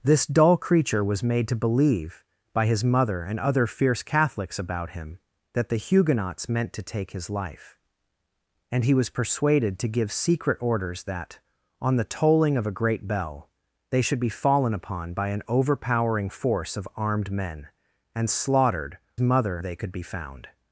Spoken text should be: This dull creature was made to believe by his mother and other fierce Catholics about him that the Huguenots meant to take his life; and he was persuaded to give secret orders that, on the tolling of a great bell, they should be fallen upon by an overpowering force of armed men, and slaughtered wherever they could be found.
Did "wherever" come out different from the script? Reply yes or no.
yes